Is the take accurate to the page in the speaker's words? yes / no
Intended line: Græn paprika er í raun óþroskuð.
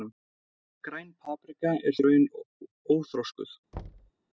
yes